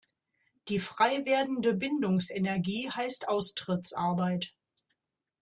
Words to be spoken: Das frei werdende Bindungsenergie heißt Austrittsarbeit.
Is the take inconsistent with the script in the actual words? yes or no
yes